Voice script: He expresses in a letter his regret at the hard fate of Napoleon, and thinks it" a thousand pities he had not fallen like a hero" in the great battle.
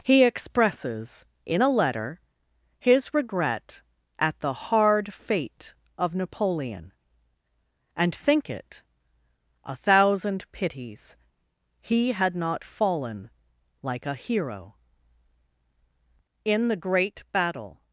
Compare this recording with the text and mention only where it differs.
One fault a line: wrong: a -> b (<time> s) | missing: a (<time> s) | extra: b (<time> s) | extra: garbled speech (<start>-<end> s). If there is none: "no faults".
wrong: thinks -> think (8.1 s)